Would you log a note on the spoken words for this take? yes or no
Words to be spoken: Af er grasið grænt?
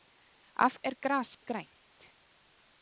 no